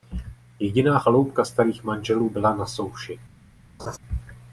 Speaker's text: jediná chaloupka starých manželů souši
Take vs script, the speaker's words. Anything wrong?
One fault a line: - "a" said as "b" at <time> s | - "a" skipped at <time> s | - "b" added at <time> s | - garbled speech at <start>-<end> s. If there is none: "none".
- "byla na" added at 2.3 s